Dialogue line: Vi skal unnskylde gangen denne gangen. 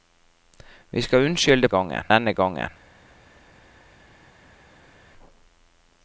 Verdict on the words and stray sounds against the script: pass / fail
pass